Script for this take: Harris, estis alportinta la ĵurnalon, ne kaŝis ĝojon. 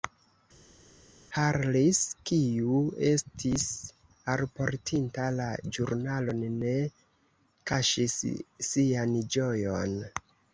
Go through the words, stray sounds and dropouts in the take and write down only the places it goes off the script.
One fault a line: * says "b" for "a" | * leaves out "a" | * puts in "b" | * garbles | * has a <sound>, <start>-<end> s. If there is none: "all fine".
* puts in "kiu"
* puts in "sian"